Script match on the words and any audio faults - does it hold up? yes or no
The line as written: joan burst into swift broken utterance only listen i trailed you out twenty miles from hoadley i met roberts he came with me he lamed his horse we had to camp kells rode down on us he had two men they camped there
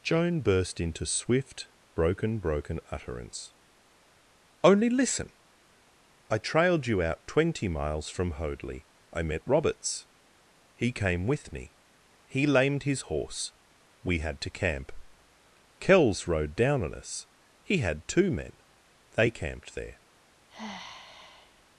no